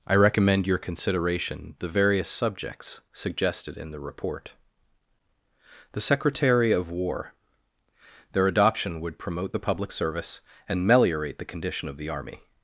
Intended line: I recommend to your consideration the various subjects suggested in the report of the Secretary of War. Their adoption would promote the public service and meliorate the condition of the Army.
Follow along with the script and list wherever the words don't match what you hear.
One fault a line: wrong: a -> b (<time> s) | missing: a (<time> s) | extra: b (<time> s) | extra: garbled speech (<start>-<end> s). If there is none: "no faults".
missing: to (0.7 s)
missing: of (4.5 s)